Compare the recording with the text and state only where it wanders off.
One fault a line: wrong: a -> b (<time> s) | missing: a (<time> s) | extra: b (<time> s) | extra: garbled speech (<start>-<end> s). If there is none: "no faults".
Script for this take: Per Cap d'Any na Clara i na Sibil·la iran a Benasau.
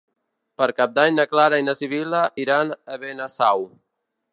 no faults